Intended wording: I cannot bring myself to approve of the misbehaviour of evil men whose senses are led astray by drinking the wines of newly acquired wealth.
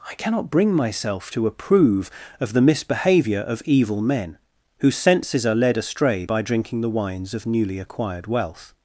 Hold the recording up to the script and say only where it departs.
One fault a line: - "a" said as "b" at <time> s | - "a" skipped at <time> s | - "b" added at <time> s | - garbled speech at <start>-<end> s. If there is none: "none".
none